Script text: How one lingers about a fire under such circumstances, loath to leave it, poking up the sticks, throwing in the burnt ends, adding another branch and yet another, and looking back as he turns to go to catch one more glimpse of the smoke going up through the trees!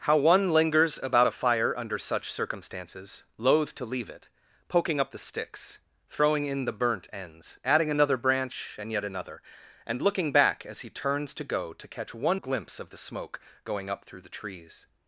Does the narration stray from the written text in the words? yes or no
yes